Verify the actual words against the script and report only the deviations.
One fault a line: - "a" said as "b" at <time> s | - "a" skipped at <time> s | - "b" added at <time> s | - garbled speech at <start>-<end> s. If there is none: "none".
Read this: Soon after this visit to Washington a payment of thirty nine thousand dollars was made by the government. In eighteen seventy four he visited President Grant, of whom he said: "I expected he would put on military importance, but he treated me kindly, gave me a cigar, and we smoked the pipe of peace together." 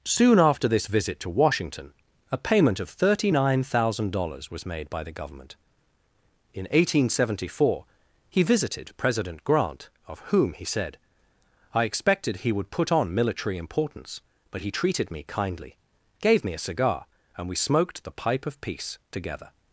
none